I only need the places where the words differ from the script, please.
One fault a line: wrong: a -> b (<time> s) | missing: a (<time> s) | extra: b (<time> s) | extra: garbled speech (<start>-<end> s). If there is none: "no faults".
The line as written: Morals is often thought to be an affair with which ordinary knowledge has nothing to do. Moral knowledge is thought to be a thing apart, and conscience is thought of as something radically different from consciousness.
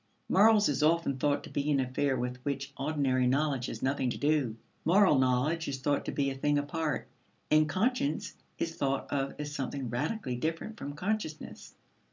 no faults